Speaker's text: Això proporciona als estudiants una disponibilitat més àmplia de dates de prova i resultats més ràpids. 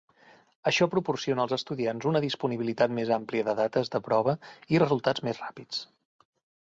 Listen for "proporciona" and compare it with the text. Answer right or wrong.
right